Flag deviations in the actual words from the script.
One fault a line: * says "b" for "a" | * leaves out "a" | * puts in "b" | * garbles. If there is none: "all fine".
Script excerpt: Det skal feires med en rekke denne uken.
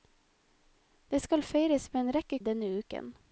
all fine